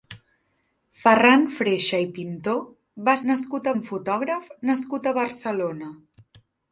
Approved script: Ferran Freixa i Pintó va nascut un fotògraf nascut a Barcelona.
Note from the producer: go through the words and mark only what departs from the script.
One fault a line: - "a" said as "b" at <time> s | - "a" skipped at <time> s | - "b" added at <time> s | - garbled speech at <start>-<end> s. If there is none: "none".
none